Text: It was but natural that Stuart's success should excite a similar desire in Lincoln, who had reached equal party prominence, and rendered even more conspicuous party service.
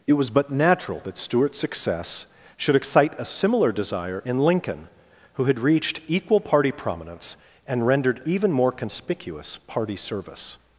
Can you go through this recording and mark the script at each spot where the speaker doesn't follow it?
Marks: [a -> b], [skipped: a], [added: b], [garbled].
It was but natural that Stuart's success should excite a similar desire in Lincoln, who had reached equal party prominence, and rendered even more conspicuous party service.